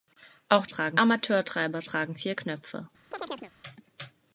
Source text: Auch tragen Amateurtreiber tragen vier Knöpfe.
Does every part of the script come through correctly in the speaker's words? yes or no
yes